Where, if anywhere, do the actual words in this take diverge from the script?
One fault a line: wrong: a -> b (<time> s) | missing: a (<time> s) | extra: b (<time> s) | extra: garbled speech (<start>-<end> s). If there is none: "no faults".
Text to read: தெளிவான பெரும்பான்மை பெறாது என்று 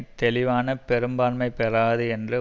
no faults